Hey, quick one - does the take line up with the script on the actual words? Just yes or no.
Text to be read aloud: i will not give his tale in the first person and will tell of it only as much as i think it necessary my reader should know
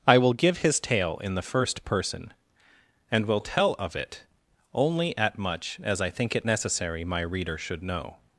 no